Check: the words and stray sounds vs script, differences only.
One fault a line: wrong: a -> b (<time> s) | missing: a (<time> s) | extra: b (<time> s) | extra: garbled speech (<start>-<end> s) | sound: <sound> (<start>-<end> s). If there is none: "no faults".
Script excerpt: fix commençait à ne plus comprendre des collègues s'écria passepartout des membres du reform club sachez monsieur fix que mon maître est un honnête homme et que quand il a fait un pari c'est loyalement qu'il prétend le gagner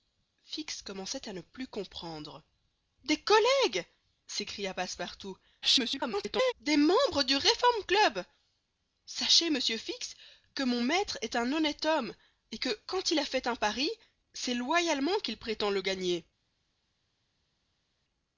extra: garbled speech (5.6-6.5 s)